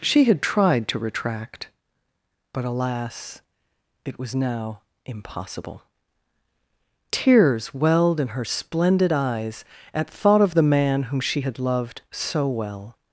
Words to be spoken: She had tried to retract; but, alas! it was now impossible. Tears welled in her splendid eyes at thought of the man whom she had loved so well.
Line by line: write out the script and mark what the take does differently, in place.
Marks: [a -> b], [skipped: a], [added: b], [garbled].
She had tried to retract; but, alas! it was now impossible. Tears welled in her splendid eyes at thought of the man whom she had loved so well.